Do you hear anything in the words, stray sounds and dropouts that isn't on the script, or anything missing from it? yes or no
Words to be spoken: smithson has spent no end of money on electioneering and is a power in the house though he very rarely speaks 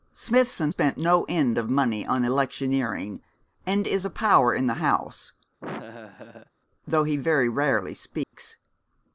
yes